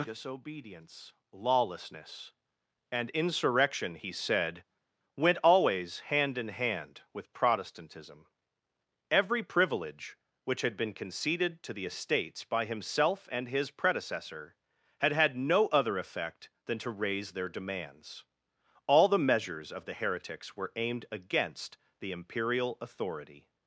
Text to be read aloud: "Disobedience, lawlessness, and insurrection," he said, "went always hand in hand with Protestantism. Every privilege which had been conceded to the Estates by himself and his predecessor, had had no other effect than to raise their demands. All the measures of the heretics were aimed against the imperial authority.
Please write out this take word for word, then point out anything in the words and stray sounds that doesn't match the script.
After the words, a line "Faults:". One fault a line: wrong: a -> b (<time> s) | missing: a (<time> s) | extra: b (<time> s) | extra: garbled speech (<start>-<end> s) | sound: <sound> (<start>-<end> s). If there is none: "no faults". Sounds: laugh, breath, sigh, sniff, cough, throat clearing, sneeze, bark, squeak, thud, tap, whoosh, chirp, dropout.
"Disobedience, lawlessness, and insurrection," he said, "went always hand in hand with Protestantism. Every privilege which had been conceded to the Estates by himself and his predecessor, had had no other effect than to raise their demands. All the measures of the heretics were aimed against the imperial authority.
Faults:
no faults